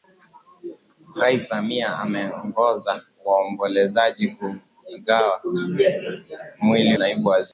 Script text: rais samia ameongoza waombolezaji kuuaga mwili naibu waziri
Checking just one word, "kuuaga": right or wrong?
right